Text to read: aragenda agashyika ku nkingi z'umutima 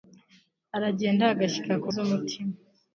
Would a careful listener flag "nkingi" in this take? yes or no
yes